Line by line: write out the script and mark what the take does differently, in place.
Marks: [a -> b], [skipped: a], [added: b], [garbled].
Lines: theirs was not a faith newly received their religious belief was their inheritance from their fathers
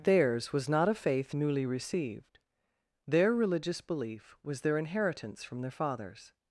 theirs was not a faith newly received their religious belief was their inheritance from their fathers